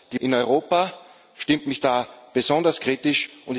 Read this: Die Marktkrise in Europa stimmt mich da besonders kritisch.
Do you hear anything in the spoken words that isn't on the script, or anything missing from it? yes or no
yes